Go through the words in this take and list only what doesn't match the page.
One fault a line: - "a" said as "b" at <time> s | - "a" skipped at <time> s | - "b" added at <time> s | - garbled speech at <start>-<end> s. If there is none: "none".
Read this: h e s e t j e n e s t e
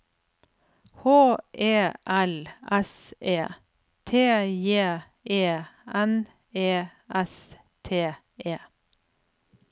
- "l" added at 2.1 s